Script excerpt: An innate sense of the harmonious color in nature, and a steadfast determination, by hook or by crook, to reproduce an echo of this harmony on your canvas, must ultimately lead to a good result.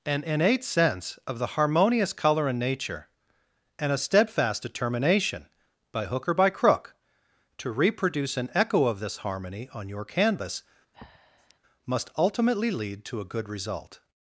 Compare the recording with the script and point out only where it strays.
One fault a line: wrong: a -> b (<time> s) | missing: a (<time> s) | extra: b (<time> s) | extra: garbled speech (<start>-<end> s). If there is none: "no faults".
no faults